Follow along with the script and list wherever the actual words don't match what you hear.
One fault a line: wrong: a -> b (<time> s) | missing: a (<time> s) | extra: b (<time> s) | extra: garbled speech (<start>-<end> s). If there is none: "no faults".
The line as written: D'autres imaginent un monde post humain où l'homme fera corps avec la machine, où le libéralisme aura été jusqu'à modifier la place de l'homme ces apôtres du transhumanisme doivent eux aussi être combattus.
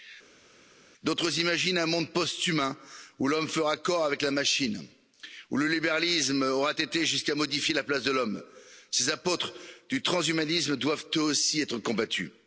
no faults